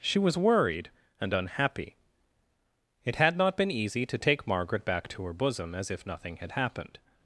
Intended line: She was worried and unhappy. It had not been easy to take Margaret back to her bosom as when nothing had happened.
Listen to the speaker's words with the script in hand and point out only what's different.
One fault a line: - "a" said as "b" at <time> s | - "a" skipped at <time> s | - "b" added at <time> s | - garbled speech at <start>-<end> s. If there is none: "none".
- "when" said as "if" at 5.9 s